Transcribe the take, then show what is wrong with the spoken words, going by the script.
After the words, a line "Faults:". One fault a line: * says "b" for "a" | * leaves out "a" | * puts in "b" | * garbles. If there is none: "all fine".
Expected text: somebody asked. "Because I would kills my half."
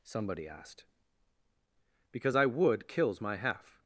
somebody asked. "Because I would kills my half."
Faults:
all fine